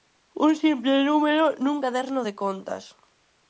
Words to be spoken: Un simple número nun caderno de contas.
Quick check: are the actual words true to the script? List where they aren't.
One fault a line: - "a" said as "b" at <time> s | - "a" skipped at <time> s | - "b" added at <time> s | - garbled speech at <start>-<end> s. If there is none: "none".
none